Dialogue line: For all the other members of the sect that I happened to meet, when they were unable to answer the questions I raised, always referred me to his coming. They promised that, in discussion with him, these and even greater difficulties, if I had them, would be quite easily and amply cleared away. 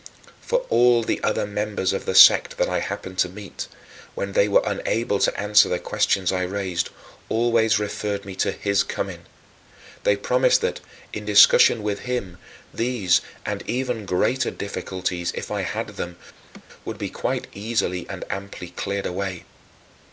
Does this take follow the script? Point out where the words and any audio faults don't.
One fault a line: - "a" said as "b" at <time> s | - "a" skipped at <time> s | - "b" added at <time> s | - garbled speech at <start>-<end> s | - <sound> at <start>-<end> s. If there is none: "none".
- laugh at 16.4-16.6 s